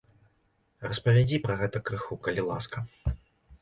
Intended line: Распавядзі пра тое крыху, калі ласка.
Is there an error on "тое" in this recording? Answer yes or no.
yes